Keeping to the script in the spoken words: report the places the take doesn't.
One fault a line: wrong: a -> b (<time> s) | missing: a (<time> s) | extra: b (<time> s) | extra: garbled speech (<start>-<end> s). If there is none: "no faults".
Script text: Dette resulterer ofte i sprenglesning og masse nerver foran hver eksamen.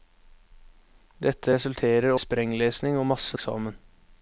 missing: ofte (2.1 s)
missing: nerver foran hver (3.4 s)